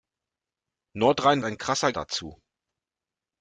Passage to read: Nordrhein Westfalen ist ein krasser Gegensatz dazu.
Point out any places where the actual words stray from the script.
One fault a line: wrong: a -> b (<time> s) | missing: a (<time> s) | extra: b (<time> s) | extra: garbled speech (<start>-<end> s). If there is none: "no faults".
missing: Westfalen ist (1.4 s)
missing: Gegensatz (1.9 s)